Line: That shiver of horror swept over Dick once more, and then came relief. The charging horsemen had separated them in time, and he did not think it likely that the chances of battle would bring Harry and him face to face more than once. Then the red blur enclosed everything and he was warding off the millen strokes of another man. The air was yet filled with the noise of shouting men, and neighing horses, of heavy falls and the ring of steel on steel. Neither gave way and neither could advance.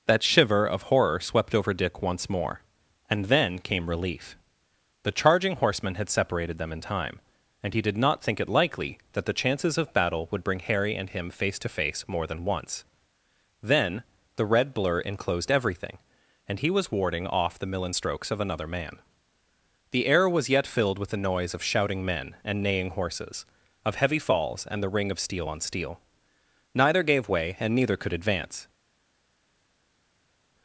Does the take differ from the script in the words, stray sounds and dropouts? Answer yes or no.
no